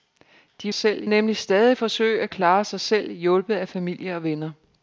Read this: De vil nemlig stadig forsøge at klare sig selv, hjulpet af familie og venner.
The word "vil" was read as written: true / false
false